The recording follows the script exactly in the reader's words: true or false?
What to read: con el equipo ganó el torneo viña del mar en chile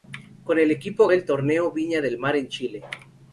false